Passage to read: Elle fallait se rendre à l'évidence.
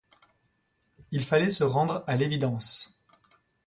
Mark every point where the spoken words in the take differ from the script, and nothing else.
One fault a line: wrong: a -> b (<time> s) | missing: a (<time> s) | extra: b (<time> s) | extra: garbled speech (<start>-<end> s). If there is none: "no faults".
wrong: Elle -> Il (1.1 s)